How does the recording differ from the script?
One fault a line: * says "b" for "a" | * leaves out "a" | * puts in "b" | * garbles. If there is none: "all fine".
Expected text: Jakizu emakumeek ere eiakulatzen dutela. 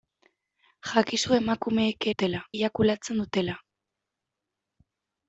* says "dutela" for "ere"